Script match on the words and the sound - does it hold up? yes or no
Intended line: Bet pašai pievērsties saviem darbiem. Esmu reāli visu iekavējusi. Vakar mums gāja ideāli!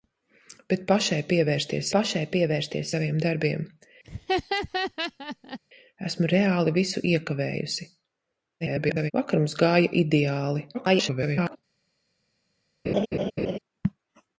no